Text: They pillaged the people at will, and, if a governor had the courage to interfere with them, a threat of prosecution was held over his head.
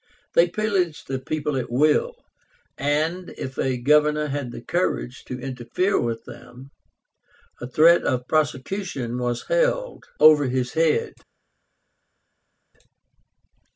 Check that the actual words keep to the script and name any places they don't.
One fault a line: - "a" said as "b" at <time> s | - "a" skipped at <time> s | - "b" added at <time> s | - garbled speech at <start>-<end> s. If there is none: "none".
none